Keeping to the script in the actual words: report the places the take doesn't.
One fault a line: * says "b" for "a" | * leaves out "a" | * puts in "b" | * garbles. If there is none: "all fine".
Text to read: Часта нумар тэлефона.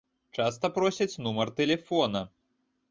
* puts in "просяць"